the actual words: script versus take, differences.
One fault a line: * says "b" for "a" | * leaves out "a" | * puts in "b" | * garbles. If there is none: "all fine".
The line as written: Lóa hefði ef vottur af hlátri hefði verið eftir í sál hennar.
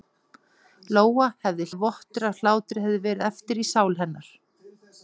all fine